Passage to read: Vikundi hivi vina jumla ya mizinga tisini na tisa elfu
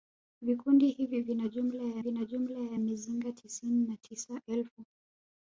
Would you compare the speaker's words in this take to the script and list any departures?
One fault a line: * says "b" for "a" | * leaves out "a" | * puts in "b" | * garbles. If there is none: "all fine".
* puts in "vina jumla ya"